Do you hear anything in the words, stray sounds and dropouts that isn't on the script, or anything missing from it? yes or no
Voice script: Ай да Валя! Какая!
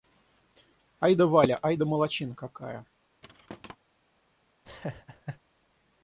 yes